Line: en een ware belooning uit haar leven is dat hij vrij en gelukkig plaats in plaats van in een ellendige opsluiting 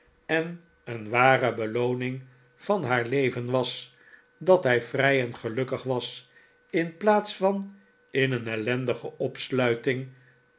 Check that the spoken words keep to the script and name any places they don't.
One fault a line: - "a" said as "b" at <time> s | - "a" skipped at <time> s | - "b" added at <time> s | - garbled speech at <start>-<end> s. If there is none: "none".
- "uit" said as "van" at 2.5 s
- "is" said as "was" at 3.5 s
- "plaats" said as "was" at 5.8 s